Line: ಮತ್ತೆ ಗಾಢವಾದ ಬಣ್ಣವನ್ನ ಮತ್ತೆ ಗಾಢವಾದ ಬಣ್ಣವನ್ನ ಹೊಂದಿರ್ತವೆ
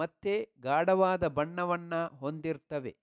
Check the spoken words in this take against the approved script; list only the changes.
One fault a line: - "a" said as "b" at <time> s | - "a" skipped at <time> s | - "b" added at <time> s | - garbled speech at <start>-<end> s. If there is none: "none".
- "ಮತ್ತೆ ಗಾಢವಾದ ಬಣ್ಣವನ್ನ" skipped at 1.9 s